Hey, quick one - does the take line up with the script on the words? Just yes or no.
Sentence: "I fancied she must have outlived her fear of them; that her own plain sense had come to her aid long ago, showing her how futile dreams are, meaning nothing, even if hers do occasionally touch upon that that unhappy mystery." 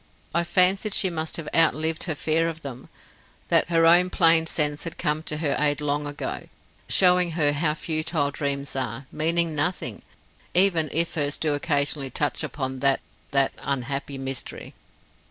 yes